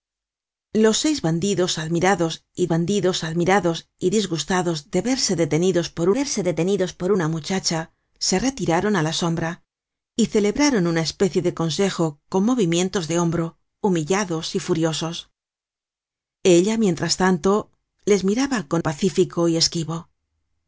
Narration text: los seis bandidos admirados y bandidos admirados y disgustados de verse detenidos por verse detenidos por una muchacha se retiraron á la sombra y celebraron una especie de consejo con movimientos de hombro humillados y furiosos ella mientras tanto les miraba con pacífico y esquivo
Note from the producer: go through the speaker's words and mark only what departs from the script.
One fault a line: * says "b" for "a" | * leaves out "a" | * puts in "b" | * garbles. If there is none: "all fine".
all fine